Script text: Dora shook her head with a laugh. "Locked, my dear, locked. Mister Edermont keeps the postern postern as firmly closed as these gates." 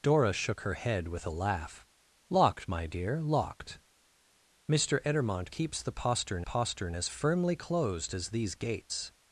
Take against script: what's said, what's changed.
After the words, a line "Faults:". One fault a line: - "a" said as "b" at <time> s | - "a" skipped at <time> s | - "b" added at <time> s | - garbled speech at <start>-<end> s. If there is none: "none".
Dora shook her head with a laugh. "Locked, my dear, locked. Mister Edermont keeps the postern postern as firmly closed as these gates."
Faults:
none